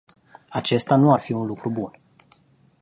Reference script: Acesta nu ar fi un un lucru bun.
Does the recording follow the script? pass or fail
fail